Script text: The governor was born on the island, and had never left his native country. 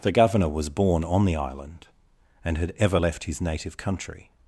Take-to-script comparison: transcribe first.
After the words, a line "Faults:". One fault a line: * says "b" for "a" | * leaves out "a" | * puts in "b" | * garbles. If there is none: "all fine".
The governor was born on the island, and had ever left his native country.
Faults:
* says "ever" for "never"